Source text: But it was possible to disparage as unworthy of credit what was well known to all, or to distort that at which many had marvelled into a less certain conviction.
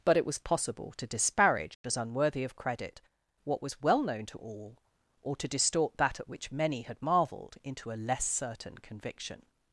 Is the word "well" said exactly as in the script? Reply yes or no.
yes